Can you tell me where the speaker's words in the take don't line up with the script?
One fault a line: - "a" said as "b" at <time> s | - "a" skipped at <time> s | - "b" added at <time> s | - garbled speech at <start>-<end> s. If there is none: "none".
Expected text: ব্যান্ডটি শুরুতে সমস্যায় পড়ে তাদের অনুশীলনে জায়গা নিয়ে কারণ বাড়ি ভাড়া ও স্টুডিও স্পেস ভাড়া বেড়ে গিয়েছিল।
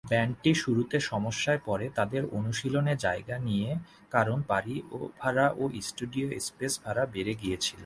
none